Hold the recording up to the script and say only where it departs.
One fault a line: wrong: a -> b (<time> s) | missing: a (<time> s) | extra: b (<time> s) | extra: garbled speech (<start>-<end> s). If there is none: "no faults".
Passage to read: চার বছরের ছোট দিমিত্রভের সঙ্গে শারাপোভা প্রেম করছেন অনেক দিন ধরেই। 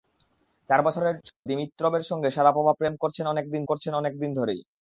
missing: ছোট (1.1 s)
extra: করছেন অনেক দিন (3.7 s)